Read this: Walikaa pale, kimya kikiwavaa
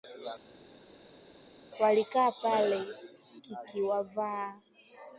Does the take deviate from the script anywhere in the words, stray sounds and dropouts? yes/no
yes